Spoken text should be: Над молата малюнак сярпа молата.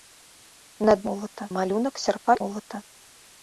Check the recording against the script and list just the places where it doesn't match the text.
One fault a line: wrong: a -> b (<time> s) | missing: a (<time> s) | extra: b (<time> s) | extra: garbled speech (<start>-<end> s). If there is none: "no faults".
no faults